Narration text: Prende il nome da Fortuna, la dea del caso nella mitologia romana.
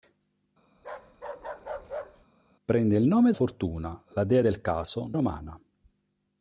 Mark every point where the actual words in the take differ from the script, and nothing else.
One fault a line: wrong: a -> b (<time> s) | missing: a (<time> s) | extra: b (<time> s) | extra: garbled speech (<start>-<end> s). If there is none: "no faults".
missing: da (3.3 s)
missing: nella mitologia (5.1 s)